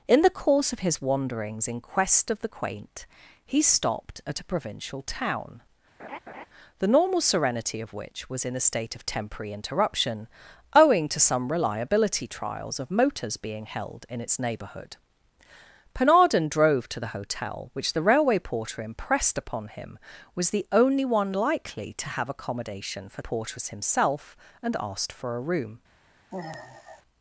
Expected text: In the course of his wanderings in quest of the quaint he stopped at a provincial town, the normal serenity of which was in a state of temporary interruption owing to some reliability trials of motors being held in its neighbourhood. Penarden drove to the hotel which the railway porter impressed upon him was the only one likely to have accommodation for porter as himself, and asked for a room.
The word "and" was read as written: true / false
true